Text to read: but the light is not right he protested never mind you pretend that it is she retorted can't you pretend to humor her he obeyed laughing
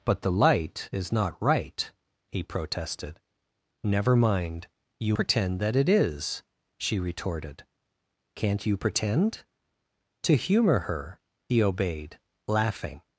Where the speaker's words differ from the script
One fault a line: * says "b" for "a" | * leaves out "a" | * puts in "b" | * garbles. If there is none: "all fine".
all fine